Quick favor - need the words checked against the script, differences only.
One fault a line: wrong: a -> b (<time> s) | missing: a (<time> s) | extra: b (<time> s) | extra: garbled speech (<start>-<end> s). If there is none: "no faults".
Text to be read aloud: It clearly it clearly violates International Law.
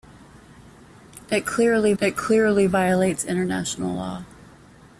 no faults